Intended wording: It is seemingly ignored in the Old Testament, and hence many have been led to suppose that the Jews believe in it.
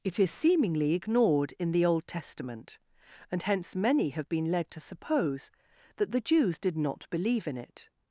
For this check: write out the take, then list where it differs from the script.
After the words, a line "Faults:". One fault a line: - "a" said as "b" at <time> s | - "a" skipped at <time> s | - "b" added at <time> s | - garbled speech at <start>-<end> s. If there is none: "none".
It is seemingly ignored in the Old Testament, and hence many have been led to suppose that the Jews did not believe in it.
Faults:
- "did not" added at 6.6 s